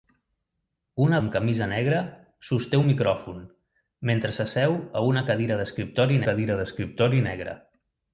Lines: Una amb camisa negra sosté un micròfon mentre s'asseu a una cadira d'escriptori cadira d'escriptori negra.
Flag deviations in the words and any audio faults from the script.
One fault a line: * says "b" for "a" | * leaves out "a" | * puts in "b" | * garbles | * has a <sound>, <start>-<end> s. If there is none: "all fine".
all fine